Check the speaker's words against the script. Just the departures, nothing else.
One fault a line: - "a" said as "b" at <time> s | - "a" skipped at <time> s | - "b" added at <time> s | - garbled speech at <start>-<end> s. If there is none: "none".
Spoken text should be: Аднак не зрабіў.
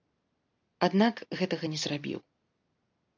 - "гэтага" added at 1.4 s